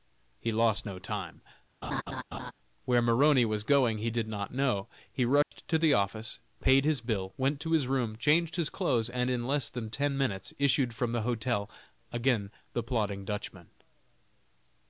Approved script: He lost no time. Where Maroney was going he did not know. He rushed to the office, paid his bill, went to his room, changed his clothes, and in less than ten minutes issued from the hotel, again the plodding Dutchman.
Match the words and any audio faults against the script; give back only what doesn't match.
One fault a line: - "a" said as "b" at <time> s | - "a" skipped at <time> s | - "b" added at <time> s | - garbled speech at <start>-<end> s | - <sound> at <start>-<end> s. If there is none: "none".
- laugh at 1.8-2.5 s
- dropout at 5.4-5.5 s